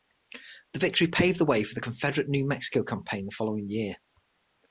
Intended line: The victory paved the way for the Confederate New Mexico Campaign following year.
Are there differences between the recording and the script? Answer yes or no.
yes